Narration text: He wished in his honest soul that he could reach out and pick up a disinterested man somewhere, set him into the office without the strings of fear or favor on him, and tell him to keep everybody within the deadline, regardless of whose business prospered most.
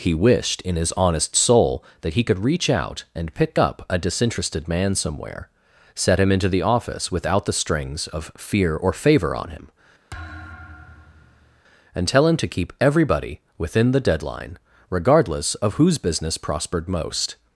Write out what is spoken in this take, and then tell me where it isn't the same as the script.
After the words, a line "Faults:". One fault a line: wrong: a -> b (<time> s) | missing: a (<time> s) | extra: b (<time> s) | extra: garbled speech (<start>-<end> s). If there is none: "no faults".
He wished in his honest soul that he could reach out and pick up a disinterested man somewhere, set him into the office without the strings of fear or favor on him, and tell him to keep everybody within the deadline, regardless of whose business prospered most.
Faults:
no faults